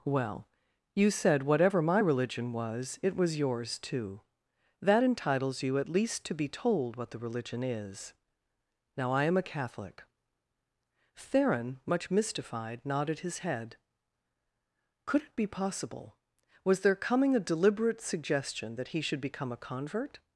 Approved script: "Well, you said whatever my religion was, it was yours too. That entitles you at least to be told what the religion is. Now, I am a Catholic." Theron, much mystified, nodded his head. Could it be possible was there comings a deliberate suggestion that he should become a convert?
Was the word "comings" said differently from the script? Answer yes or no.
yes